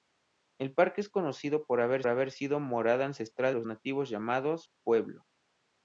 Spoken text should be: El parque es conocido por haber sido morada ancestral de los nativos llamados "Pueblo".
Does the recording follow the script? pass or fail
fail